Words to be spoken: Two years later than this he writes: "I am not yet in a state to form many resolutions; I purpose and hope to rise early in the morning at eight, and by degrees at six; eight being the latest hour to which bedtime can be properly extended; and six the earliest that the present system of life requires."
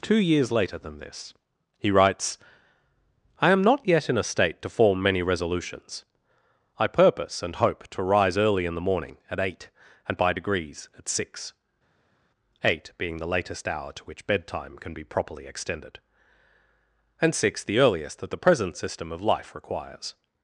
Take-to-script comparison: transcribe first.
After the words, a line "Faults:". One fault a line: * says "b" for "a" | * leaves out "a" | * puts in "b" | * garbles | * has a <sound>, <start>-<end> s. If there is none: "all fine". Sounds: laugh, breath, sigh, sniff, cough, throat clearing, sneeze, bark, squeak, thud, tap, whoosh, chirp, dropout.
Two years later than this he writes: "I am not yet in a state to form many resolutions; I purpose and hope to rise early in the morning at eight, and by degrees at six; eight being the latest hour to which bedtime can be properly extended; and six the earliest that the present system of life requires."
Faults:
all fine